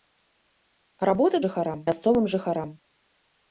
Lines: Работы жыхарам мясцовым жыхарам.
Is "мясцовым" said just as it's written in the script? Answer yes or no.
yes